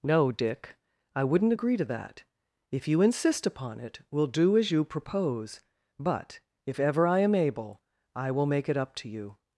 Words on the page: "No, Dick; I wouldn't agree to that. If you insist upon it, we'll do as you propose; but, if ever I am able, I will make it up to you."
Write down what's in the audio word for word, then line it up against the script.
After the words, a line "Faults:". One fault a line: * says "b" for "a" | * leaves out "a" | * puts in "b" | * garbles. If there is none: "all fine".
"No, Dick; I wouldn't agree to that. If you insist upon it, we'll do as you propose; but, if ever I am able, I will make it up to you."
Faults:
all fine